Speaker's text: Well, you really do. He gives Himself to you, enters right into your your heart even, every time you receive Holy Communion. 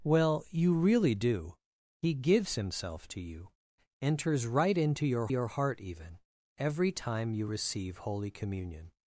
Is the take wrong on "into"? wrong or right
right